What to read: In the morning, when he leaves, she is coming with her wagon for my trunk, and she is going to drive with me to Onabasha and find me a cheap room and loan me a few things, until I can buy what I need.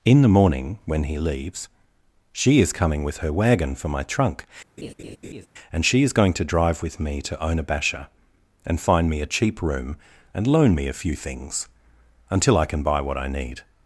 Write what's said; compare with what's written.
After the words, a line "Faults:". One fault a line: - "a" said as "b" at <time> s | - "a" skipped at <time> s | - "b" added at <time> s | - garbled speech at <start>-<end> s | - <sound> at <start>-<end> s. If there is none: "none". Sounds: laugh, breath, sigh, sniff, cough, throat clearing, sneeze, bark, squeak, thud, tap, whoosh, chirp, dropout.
In the morning, when he leaves, she is coming with her wagon for my trunk, and she is going to drive with me to Onabasha and find me a cheap room and loan me a few things, until I can buy what I need.
Faults:
- laugh at 4.8-5.5 s